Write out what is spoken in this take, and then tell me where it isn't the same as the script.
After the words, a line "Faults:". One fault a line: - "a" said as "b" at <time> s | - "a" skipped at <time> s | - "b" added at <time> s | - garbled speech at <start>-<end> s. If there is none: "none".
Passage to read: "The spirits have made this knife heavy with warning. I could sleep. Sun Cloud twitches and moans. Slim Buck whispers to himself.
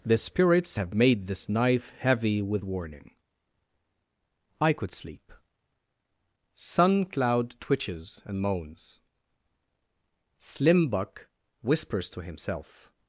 "The spirits have made this knife heavy with warning. I could sleep. Sun Cloud twitches and moans. Slim Buck whispers to himself.
Faults:
none